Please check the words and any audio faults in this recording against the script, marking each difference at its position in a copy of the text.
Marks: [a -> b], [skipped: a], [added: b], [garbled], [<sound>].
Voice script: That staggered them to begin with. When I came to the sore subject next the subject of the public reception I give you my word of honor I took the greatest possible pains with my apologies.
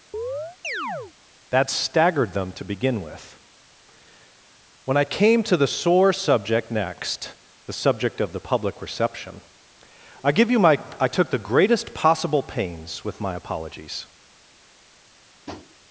[chirp] That staggered them to begin with. When I came to the sore subject next the subject of the public reception I give you my [skipped: word of honor] I took the greatest possible pains with my apologies. [tap]